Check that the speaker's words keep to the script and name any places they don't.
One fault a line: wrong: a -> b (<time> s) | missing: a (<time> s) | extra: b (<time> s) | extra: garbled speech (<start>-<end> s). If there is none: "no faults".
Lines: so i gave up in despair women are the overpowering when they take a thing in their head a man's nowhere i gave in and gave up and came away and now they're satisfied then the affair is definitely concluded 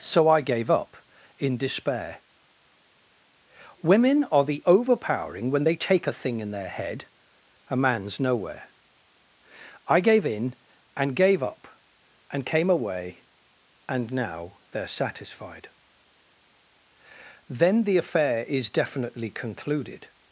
no faults